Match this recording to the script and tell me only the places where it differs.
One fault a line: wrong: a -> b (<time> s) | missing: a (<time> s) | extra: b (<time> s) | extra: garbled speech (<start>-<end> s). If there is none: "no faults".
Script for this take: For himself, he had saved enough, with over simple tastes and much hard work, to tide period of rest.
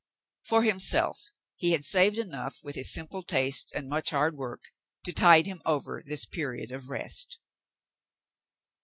wrong: over -> his (2.7 s)
extra: him over this (5.5 s)